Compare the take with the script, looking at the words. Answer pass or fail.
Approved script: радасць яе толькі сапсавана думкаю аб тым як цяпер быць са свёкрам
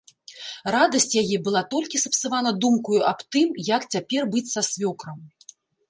fail